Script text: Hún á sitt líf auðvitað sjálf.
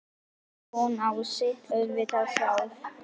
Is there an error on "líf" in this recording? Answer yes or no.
yes